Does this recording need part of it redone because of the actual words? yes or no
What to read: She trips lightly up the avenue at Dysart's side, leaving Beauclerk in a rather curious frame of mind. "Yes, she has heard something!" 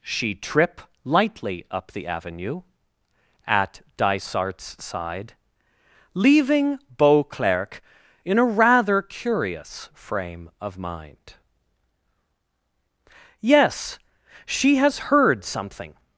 yes